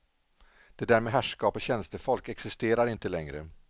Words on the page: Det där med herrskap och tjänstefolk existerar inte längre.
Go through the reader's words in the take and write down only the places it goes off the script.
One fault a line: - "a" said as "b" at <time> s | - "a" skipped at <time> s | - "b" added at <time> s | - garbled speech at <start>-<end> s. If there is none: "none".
none